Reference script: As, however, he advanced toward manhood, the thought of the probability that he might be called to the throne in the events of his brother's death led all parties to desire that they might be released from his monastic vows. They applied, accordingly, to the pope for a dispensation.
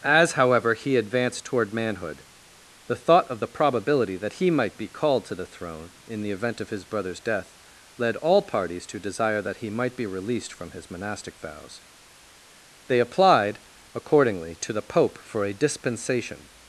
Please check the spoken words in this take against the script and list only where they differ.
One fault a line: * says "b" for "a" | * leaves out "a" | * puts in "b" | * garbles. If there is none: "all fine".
* says "event" for "events"
* says "he" for "they"